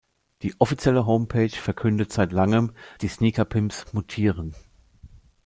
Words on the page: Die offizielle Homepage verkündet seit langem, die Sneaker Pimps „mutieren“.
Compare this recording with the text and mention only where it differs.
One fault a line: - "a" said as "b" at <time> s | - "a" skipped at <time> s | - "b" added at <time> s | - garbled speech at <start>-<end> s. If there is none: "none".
none